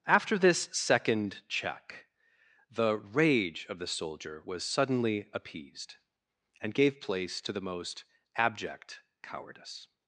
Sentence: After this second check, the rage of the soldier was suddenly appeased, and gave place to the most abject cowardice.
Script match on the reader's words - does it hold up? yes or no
yes